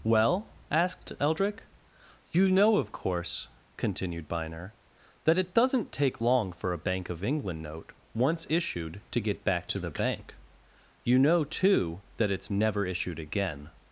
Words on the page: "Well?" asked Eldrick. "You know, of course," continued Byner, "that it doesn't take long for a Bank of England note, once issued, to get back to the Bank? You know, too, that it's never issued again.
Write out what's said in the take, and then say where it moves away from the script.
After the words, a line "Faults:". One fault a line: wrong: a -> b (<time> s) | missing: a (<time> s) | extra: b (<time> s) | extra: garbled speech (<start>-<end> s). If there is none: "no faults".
"Well?" asked Eldrick. "You know, of course," continued Byner, "that it doesn't take long for a Bank of England note, once issued, to get back to the Bank? You know, too, that it's never issued again.
Faults:
no faults